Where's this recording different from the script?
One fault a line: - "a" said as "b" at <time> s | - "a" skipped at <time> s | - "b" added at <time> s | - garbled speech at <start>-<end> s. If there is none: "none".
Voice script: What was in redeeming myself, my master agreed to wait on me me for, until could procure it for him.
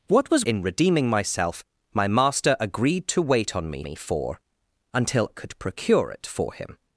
none